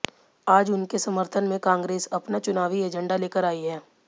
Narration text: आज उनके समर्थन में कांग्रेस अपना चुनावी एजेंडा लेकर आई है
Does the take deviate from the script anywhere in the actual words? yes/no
no